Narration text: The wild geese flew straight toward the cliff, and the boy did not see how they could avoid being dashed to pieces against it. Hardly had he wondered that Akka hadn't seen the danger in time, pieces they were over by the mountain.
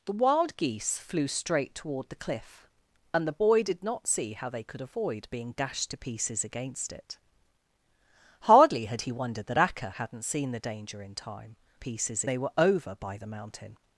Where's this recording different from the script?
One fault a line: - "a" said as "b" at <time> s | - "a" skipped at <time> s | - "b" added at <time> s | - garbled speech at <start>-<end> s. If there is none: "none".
none